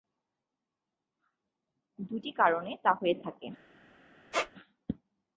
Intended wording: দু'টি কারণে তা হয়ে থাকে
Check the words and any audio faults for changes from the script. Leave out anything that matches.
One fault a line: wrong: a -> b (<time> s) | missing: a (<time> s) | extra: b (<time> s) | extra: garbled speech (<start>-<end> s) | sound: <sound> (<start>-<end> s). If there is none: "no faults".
sound: squeak (4.3-4.5 s)